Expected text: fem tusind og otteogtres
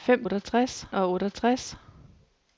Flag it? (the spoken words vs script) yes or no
yes